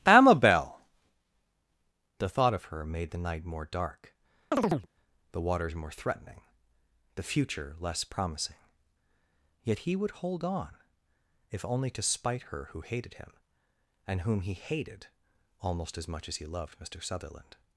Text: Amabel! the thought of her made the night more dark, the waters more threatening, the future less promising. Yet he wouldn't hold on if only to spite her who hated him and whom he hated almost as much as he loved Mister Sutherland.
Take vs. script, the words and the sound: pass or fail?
fail